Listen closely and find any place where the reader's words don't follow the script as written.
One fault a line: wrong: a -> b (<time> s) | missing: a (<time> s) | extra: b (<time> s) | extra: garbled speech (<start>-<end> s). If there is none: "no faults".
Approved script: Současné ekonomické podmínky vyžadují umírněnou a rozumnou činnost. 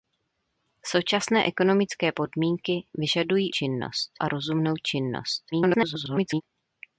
wrong: umírněnou -> činnost (3.5 s)
extra: garbled speech (5.5-6.4 s)